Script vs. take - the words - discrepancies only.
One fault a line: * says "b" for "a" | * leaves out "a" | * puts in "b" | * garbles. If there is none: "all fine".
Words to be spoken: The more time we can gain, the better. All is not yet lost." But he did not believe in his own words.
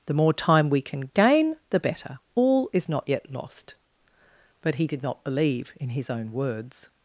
all fine